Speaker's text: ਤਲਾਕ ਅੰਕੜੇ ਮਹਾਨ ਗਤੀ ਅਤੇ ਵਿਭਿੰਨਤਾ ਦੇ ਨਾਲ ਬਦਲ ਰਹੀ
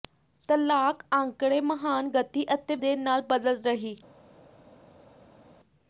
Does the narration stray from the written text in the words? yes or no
yes